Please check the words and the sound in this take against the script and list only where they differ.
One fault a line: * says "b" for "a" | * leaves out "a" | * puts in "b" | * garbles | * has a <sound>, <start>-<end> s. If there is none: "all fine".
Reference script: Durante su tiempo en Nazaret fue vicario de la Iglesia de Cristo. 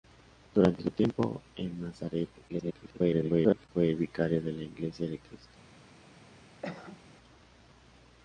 * garbles
* has a cough, 6.6-7.1 s